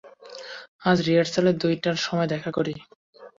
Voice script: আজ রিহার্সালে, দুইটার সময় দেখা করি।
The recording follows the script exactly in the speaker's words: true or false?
true